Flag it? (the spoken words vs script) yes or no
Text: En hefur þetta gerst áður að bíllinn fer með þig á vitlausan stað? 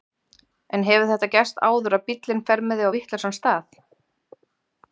no